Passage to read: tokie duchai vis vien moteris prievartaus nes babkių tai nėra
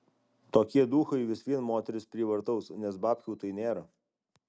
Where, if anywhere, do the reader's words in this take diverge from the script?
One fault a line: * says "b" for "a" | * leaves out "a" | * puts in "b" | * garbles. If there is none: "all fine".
all fine